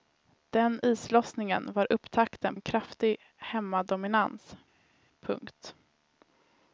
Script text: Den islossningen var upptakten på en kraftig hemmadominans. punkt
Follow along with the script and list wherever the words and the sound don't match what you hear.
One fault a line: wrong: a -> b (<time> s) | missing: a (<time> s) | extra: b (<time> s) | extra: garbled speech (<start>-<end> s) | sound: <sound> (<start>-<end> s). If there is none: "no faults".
missing: på (2.6 s)